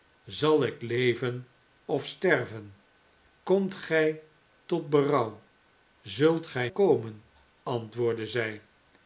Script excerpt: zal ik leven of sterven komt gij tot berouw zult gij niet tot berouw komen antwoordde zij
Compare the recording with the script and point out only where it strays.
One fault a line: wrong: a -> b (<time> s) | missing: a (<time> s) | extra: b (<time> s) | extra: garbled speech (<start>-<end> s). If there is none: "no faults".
missing: niet tot berouw (6.7 s)